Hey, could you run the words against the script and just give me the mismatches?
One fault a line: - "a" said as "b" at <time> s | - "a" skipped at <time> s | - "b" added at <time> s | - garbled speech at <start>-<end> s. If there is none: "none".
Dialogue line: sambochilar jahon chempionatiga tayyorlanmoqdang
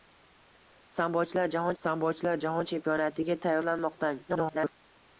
- "sambochilar jahon" added at 1.8 s
- garbled speech at 4.3-4.7 s